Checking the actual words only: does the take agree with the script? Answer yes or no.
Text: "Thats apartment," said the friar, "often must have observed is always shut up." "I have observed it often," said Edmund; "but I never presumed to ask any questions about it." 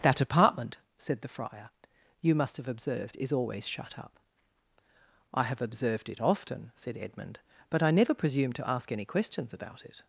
no